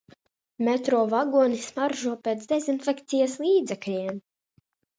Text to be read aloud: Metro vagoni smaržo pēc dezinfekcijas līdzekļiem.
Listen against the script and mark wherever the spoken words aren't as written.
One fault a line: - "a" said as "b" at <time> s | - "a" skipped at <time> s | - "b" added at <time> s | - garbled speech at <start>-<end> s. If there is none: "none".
none